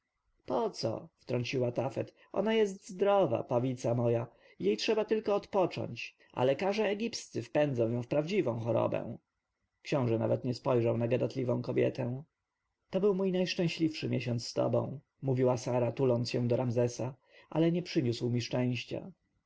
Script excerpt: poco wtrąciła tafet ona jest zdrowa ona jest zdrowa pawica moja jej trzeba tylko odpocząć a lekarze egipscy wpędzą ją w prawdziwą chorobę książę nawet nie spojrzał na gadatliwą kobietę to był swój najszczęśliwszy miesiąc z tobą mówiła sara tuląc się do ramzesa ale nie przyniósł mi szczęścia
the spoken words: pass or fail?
fail